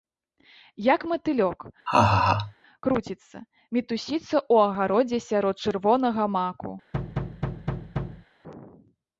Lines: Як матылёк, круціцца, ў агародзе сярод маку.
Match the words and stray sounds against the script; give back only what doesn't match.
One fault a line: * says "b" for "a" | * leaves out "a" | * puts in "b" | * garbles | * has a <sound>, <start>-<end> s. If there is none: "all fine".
* has a laugh, 1.9-2.5 s
* puts in "мітусіцца"
* puts in "чырвонага"
* has a thud, 6.9-8.3 s